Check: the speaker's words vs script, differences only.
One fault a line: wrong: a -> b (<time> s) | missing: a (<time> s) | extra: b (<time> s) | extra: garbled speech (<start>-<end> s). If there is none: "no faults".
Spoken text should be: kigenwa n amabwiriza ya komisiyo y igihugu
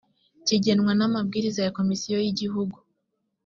no faults